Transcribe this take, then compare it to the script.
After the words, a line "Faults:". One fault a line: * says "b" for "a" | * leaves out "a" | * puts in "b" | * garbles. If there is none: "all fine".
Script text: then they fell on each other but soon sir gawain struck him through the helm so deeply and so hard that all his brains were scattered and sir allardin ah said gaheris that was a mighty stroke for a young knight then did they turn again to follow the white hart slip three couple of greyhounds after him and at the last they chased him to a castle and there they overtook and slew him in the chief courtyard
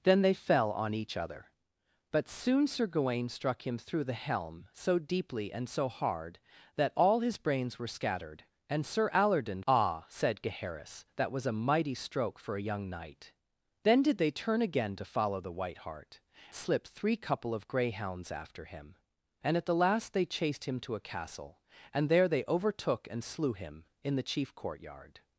then they fell on each other but soon sir gawain struck him through the helm so deeply and so hard that all his brains were scattered and sir allardin ah said gaheris that was a mighty stroke for a young knight then did they turn again to follow the white hart slip three couple of greyhounds after him and at the last they chased him to a castle and there they overtook and slew him in the chief courtyard
Faults:
all fine